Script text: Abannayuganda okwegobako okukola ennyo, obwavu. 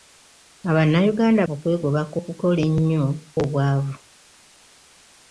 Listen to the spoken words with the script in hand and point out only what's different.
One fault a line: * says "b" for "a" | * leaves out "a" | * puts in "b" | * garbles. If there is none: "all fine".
all fine